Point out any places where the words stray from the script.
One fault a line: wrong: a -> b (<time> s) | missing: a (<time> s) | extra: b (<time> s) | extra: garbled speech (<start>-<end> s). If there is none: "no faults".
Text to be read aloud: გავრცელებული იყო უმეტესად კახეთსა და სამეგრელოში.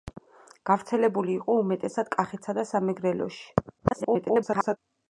extra: garbled speech (3.8-4.8 s)